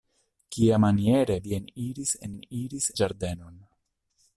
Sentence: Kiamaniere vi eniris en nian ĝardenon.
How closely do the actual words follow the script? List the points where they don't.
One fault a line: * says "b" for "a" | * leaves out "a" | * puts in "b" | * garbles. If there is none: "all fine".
* says "eniris" for "nian"